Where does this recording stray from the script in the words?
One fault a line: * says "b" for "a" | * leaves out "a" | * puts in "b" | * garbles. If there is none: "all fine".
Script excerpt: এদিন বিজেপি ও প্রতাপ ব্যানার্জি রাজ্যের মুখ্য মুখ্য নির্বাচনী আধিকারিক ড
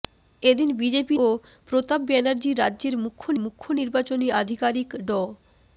all fine